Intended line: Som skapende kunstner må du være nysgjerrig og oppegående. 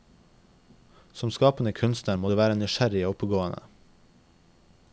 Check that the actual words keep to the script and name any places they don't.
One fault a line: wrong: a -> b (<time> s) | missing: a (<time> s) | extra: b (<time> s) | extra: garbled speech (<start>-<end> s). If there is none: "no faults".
no faults